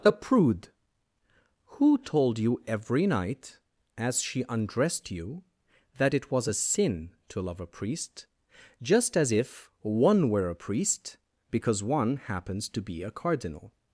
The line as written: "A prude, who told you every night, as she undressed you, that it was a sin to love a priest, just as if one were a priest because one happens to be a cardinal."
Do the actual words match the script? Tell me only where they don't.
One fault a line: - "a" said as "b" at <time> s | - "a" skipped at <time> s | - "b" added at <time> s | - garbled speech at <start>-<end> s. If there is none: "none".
none